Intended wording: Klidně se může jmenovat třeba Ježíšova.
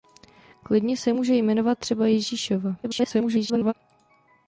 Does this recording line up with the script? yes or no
no